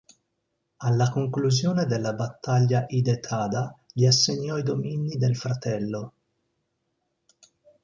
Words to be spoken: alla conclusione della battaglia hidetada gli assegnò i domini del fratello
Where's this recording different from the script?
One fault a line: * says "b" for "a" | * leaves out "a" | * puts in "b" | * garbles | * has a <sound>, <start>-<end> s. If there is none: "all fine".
all fine